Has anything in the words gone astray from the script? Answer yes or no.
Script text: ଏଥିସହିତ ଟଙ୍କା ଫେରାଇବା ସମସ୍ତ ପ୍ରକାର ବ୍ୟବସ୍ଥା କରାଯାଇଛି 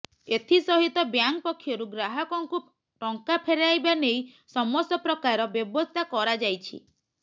yes